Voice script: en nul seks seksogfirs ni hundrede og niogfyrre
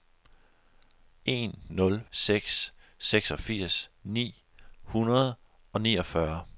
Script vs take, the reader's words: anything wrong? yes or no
no